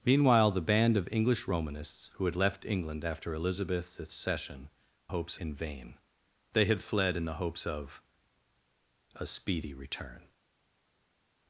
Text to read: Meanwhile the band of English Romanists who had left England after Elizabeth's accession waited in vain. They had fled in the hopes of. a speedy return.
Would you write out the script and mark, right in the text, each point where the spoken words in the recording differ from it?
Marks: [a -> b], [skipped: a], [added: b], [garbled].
Meanwhile the band of English Romanists who had left England after Elizabeth's accession [waited -> hopes] in vain. They had fled in the hopes of. a speedy return.